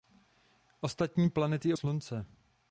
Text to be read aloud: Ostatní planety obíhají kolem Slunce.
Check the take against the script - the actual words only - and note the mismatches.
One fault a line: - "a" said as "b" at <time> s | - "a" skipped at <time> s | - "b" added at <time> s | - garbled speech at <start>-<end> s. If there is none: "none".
- "obíhají kolem" skipped at 1.7 s